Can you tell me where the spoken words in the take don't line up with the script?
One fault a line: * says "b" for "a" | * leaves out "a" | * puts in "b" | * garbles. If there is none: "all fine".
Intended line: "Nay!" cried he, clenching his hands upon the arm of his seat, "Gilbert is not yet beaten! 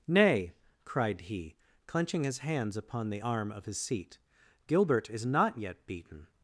all fine